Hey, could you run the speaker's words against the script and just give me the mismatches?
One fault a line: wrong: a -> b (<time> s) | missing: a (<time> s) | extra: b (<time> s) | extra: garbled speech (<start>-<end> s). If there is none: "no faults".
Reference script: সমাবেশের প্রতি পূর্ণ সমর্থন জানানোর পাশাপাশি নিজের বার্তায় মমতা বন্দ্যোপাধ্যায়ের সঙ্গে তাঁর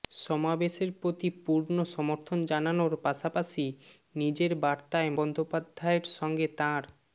missing: মমতা (5.1 s)